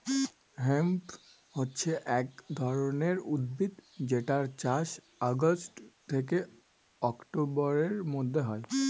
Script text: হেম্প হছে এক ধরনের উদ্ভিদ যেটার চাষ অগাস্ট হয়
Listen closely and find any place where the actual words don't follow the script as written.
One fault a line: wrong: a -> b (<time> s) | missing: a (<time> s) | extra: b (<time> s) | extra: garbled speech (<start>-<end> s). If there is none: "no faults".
extra: থেকে অক্টোবরের মধ্যে (6.1 s)